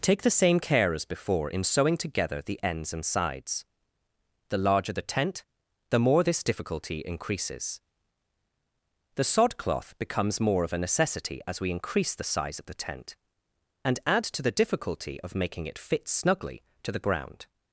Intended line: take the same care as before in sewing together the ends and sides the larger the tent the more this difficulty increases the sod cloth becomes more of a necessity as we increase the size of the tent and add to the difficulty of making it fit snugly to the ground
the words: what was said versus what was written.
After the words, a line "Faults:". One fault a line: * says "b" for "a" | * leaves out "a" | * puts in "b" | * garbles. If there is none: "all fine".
take the same care as before in sewing together the ends and sides the larger the tent the more this difficulty increases the sod cloth becomes more of a necessity as we increase the size of the tent and add to the difficulty of making it fit snugly to the ground
Faults:
all fine